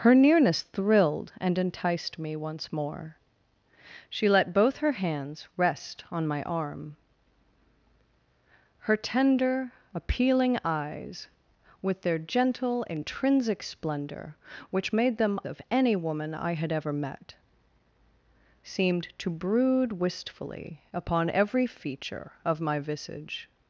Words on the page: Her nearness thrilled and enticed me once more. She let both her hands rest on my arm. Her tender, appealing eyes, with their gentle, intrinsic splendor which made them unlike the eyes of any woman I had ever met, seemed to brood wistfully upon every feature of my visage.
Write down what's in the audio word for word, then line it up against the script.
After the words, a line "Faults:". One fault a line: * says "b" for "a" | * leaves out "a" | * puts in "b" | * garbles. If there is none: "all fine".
Her nearness thrilled and enticed me once more. She let both her hands rest on my arm. Her tender, appealing eyes, with their gentle, intrinsic splendor which made them of any woman I had ever met, seemed to brood wistfully upon every feature of my visage.
Faults:
* leaves out "unlike the eyes"